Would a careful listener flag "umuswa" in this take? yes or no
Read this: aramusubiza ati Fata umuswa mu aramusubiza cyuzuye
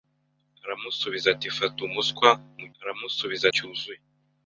no